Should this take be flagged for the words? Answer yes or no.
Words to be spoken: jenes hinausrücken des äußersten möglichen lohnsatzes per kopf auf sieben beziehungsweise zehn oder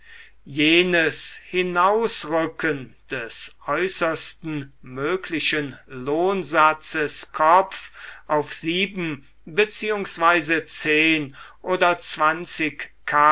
yes